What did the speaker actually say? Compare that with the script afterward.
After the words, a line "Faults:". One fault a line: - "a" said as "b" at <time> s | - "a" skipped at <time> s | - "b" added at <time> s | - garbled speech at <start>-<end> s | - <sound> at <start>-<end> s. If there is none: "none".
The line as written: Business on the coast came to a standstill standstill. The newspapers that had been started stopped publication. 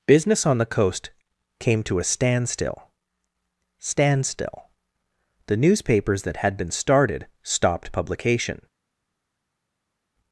Business on the coast came to a standstill standstill. The newspapers that had been started stopped publication.
Faults:
none